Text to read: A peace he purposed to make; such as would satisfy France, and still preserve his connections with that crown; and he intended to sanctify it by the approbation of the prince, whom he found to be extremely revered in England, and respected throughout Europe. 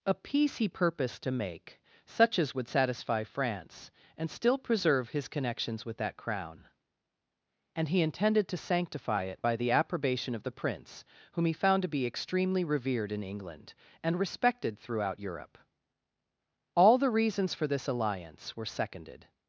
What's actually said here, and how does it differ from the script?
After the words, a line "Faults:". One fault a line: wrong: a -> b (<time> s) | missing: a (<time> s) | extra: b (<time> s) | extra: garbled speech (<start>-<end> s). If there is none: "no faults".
A peace he purposed to make; such as would satisfy France, and still preserve his connections with that crown; and he intended to sanctify it by the approbation of the prince, whom he found to be extremely revered in England, and respected throughout Europe. All the reasons for this alliance were seconded
Faults:
extra: All the reasons for this alliance were seconded (16.7 s)